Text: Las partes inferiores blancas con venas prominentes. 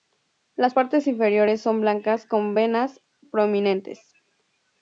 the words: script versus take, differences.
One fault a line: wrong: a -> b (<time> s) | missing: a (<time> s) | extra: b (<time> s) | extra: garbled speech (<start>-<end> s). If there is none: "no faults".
extra: son (1.6 s)